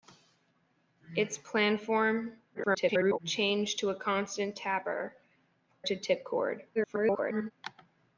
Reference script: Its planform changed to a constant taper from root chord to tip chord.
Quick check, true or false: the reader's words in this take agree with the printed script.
false